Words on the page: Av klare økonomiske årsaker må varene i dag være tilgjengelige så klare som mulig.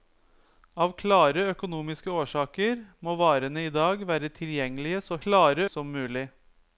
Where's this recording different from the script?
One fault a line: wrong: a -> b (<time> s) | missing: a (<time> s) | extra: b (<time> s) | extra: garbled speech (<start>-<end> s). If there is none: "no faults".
no faults